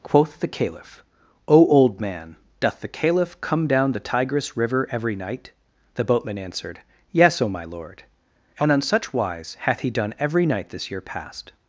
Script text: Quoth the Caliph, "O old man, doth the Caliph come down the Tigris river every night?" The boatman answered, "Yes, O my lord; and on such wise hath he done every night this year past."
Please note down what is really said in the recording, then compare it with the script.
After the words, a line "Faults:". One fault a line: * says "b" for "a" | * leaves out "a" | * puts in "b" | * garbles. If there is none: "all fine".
Quoth the Caliph, "O old man, doth the Caliph come down the Tigris river every night?" The boatman answered, "Yes, O my lord; and on such wise hath he done every night this year past."
Faults:
all fine